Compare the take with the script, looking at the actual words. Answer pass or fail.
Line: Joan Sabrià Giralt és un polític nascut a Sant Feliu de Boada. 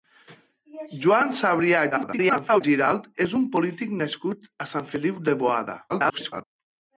fail